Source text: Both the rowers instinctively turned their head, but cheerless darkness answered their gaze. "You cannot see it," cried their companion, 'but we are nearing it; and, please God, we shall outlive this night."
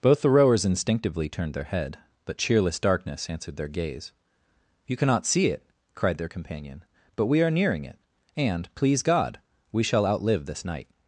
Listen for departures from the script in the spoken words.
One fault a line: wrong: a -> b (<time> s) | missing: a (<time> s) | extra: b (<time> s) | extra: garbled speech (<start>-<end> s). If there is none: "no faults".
no faults